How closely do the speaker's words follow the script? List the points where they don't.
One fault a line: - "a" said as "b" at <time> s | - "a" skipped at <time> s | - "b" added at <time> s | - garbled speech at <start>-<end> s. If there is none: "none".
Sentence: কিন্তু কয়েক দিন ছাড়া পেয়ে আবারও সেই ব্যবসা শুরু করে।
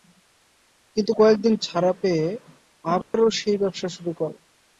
none